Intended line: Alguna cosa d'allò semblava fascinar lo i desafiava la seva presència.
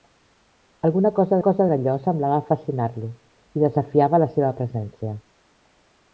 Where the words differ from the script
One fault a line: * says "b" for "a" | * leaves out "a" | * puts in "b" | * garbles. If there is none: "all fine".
* puts in "cosa"